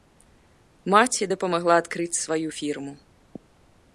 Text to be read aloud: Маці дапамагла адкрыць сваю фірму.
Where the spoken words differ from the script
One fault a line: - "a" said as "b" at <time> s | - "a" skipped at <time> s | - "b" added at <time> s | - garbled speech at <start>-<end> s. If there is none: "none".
none